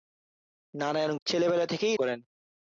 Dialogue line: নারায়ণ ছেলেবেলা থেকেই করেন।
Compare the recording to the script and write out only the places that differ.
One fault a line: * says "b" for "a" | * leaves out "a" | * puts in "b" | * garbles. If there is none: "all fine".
all fine